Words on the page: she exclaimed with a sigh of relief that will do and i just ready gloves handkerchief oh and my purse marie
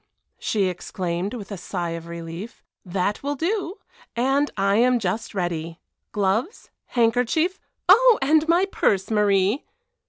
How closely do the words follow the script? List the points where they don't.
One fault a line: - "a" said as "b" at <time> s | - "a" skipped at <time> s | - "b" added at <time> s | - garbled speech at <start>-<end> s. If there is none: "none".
- "am" added at 4.8 s